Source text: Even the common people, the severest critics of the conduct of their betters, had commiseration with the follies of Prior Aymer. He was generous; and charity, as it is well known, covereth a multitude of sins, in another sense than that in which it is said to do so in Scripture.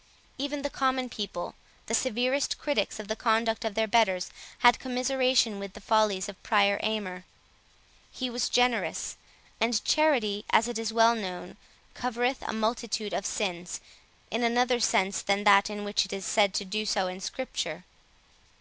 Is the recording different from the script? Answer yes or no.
no